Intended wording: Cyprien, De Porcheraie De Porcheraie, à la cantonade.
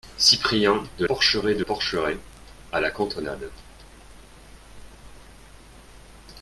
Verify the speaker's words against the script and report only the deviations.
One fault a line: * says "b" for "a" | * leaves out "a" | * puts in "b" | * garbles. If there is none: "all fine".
all fine